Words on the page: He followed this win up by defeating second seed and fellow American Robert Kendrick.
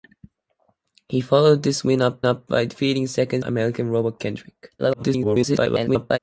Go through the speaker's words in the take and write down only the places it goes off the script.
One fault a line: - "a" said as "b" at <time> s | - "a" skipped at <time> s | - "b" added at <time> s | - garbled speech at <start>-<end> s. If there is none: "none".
- "up" added at 2.2 s
- "seed and fellow" skipped at 3.4 s
- garbled speech at 4.8-6.2 s